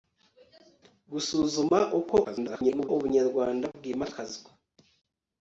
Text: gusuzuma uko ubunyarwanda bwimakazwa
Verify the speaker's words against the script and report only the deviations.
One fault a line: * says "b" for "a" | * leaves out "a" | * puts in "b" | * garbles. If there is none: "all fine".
* garbles